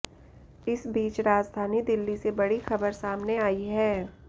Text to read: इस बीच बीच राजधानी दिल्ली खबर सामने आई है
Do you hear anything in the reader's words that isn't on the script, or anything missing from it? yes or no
yes